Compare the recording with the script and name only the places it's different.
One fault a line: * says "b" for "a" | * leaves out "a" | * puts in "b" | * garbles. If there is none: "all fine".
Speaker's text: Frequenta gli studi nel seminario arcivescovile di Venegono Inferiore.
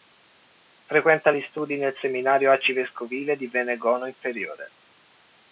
all fine